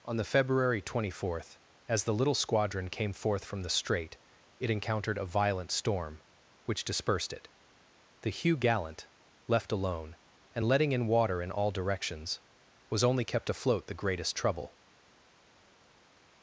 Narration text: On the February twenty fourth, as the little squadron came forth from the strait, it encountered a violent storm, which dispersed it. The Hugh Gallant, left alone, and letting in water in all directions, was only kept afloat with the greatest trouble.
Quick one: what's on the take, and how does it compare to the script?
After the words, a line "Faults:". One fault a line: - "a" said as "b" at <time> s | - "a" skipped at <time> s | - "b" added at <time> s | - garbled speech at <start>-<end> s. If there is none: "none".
On the February twenty fourth, as the little squadron came forth from the strait, it encountered a violent storm, which dispersed it. The Hugh Gallant, left alone, and letting in water in all directions, was only kept afloat the greatest trouble.
Faults:
- "with" skipped at 13.9 s